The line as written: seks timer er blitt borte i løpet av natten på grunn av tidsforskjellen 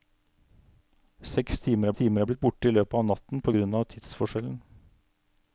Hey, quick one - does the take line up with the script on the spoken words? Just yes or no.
no